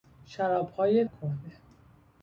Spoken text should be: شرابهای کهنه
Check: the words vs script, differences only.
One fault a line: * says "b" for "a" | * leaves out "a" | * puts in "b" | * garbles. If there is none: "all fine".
all fine